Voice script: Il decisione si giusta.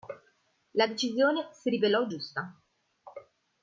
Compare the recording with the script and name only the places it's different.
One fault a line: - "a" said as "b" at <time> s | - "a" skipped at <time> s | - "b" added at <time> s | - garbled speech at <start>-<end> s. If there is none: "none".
- "Il" said as "La" at 0.7 s
- "rivelò" added at 1.7 s